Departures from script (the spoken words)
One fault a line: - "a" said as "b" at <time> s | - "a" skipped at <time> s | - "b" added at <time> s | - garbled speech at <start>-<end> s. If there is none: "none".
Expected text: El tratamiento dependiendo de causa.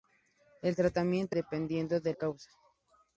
none